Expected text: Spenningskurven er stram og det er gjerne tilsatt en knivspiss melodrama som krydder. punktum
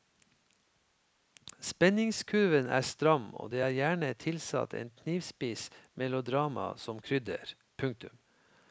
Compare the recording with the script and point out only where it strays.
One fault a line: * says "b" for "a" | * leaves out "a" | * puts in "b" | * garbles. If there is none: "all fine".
all fine